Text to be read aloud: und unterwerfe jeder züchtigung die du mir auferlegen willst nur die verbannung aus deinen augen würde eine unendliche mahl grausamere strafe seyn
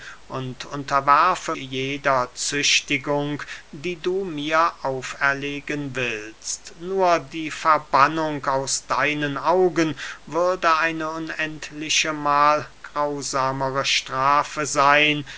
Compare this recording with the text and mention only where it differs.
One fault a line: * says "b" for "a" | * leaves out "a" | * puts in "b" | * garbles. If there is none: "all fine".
all fine